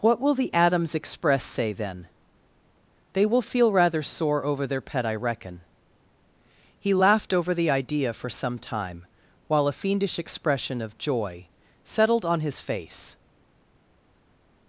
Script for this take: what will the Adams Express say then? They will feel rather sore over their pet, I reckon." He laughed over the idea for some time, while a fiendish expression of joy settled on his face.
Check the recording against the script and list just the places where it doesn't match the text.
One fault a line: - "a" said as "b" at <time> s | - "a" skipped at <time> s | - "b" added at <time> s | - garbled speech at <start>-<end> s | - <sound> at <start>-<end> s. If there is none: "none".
none